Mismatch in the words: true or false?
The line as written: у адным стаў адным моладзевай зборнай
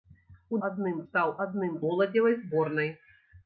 false